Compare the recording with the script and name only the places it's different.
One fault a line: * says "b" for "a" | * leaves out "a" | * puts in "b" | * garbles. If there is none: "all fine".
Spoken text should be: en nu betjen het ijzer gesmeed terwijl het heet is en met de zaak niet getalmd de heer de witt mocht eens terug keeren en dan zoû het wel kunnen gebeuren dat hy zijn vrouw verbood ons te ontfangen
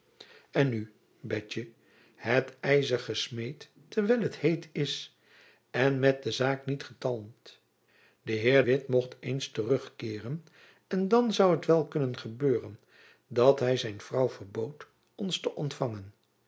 * leaves out "de"